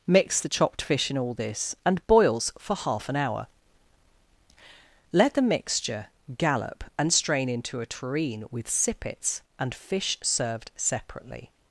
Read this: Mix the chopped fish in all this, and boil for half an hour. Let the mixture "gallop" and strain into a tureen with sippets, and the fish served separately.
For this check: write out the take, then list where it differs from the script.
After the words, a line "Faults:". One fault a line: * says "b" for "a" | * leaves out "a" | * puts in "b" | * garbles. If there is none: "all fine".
Mix the chopped fish in all this, and boils for half an hour. Let the mixture "gallop" and strain into a tureen with sippets, and fish served separately.
Faults:
* says "boils" for "boil"
* leaves out "the"